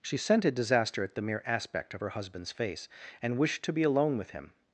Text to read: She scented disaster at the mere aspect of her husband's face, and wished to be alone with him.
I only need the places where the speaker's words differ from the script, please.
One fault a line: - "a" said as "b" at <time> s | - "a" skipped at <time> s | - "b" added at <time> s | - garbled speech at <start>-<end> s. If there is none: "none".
none